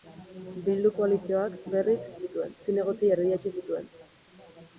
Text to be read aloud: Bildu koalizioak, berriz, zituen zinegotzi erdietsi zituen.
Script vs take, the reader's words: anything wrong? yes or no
no